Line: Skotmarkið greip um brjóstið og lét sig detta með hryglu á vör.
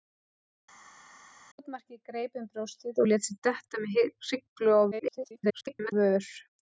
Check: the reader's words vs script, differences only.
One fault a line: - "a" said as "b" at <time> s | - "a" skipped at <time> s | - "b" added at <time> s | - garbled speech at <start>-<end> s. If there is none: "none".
- garbled speech at 4.9-5.9 s